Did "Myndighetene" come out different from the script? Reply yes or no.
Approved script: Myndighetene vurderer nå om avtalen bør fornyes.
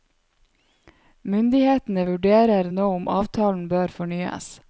no